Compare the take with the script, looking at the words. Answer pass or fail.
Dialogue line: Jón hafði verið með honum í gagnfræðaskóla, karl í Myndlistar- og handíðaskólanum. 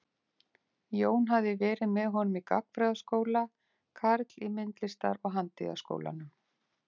pass